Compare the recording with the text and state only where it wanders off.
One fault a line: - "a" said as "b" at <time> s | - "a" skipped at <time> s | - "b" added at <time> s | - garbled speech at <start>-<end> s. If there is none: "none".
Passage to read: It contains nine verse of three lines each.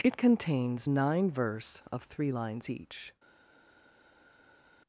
none